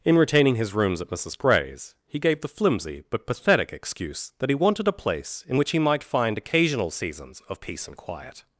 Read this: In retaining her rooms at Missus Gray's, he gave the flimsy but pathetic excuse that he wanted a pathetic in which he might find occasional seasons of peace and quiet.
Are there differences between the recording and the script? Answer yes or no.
yes